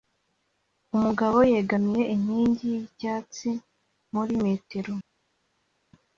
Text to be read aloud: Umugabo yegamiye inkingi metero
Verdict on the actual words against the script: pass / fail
fail